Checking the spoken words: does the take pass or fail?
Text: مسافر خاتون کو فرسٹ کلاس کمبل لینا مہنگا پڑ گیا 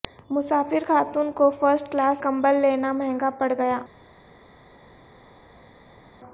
pass